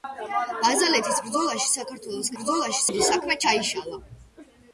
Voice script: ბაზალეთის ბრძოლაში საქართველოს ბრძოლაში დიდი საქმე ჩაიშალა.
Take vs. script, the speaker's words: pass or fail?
pass